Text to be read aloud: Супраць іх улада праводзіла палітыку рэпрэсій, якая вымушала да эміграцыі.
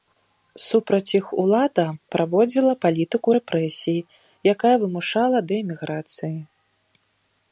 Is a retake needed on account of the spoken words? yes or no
no